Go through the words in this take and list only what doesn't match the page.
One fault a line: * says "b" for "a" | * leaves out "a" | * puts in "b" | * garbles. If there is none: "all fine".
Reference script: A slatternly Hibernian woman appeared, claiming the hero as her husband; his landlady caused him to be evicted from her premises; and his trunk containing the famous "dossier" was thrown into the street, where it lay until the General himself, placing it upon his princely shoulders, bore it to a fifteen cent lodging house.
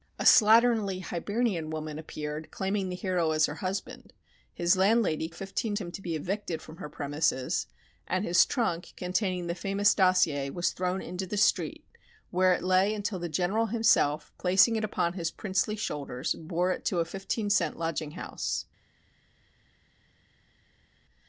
* says "fifteen" for "caused"